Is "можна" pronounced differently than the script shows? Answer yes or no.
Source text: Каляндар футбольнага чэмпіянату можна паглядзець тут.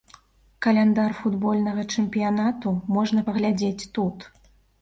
no